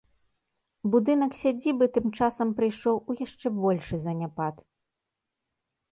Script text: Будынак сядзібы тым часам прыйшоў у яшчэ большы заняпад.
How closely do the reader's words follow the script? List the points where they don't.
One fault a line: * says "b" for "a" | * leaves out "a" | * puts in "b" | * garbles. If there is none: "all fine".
all fine